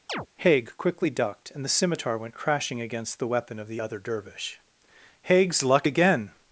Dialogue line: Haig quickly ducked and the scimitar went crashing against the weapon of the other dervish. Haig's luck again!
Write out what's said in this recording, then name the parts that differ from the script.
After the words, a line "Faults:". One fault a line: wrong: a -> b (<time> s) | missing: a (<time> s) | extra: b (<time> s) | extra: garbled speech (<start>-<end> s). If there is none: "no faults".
Haig quickly ducked and the scimitar went crashing against the weapon of the other dervish. Haig's luck again!
Faults:
no faults